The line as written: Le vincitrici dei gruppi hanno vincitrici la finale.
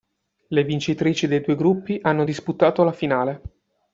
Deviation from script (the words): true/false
true